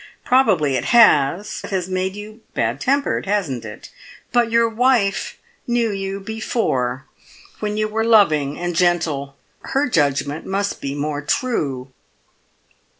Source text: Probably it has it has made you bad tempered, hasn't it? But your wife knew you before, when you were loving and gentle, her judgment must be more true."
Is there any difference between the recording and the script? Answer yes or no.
no